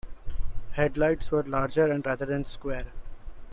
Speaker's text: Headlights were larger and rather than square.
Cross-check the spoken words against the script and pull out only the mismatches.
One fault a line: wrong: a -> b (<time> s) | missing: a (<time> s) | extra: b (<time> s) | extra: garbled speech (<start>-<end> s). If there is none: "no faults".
no faults